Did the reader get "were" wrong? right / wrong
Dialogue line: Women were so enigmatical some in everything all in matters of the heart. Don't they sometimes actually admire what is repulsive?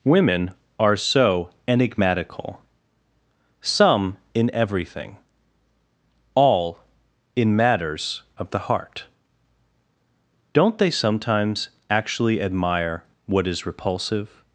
wrong